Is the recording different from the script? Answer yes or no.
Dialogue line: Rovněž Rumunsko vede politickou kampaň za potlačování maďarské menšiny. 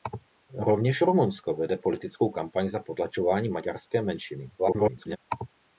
yes